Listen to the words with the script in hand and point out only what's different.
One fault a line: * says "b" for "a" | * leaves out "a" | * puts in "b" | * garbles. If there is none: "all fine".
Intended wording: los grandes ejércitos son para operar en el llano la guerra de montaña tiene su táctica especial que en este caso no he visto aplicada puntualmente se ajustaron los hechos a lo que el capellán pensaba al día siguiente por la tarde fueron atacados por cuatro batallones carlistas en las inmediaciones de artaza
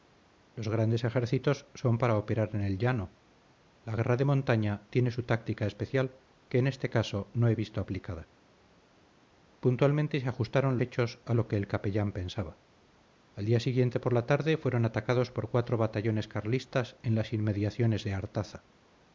* leaves out "los"